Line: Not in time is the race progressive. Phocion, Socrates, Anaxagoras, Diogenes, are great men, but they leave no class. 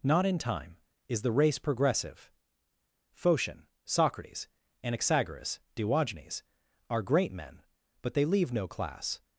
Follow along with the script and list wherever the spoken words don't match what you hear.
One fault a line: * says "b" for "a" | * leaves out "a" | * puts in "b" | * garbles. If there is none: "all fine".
all fine